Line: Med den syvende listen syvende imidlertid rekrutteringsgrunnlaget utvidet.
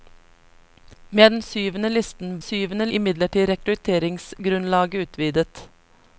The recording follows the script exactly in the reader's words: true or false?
true